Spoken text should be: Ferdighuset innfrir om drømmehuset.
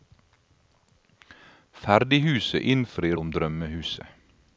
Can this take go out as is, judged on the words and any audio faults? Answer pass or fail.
pass